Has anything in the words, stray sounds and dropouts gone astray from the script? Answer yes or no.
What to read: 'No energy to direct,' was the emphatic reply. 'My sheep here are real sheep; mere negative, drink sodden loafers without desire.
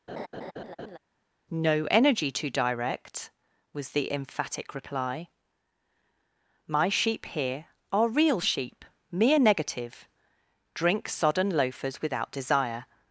yes